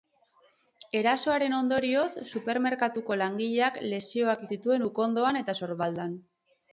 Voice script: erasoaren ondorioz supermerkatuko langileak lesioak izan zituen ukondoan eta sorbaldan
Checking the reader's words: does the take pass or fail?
fail